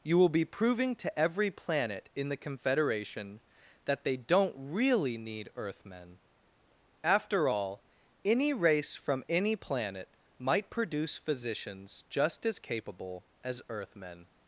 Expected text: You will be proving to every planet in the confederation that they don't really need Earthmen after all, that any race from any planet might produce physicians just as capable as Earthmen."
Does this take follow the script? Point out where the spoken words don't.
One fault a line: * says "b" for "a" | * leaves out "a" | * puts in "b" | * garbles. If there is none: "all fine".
* leaves out "that"